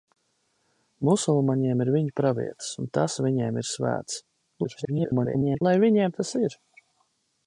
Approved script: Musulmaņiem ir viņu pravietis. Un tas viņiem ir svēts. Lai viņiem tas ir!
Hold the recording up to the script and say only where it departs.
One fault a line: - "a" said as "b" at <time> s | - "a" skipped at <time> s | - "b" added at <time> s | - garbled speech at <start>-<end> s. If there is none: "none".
- garbled speech at 4.6-5.6 s